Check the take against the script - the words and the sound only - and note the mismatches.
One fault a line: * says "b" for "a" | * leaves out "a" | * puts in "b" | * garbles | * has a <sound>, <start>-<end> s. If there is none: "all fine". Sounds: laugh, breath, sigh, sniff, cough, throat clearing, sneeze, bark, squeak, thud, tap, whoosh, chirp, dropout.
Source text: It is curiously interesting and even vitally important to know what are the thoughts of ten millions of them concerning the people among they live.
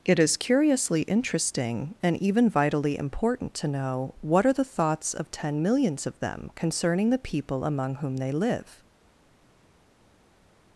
* puts in "whom"